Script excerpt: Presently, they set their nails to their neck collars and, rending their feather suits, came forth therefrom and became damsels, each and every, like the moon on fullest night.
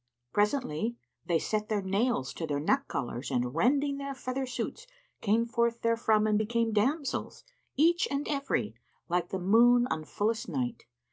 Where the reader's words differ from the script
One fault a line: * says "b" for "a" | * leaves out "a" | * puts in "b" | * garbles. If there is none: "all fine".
all fine